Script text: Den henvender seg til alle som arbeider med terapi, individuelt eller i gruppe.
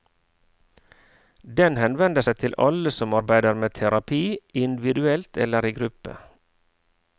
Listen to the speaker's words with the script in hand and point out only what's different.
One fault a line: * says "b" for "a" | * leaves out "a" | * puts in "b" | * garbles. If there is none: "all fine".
all fine